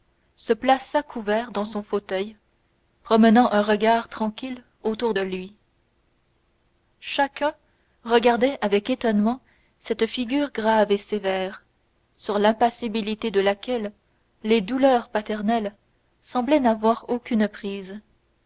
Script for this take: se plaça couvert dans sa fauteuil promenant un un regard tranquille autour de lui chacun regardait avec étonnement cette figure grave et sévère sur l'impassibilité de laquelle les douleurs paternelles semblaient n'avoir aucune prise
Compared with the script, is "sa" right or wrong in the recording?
wrong